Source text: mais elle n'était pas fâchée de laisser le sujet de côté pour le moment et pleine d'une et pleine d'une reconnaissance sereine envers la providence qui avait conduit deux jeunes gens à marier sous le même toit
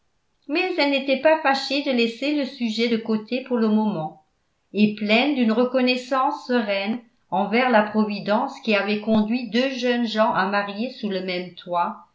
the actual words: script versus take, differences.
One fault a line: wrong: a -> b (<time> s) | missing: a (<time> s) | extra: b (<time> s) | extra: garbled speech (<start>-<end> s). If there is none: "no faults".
missing: et pleine d'une (5.5 s)